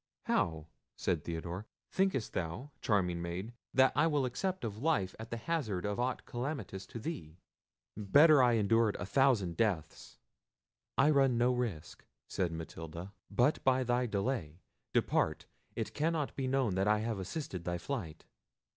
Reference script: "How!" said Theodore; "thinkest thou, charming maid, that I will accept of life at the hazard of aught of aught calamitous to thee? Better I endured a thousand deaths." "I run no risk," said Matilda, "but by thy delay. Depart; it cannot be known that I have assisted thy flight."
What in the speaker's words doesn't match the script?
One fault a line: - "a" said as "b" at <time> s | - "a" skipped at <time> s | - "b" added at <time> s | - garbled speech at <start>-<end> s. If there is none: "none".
- "of aught" skipped at 6.2 s